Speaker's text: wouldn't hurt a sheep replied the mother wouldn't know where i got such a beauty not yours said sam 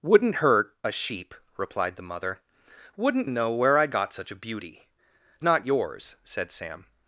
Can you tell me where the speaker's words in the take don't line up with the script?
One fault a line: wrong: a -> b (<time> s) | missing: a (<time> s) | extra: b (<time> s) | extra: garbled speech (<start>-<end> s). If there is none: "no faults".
no faults